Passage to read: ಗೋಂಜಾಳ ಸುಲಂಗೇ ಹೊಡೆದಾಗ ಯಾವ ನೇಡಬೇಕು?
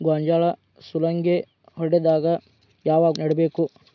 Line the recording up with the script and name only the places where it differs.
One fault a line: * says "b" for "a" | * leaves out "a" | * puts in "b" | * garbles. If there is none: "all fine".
all fine